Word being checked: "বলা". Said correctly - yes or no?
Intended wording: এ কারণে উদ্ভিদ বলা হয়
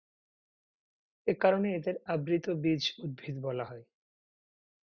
yes